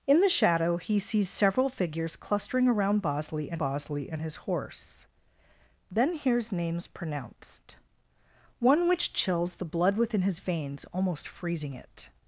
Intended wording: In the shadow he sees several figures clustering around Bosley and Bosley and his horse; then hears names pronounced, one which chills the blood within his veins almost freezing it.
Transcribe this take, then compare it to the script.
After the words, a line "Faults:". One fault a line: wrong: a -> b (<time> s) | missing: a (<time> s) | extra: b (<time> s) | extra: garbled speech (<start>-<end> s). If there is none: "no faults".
In the shadow he sees several figures clustering around Bosley and Bosley and his horse; then hears names pronounced, one which chills the blood within his veins almost freezing it.
Faults:
no faults